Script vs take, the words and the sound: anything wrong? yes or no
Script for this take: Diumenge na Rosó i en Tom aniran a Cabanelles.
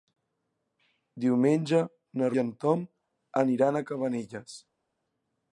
yes